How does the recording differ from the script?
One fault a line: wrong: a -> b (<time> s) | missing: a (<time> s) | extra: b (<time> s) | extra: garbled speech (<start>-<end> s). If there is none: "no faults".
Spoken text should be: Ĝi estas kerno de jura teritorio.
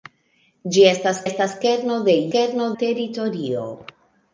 extra: estas (1.3 s)
wrong: jura -> kerno (2.3 s)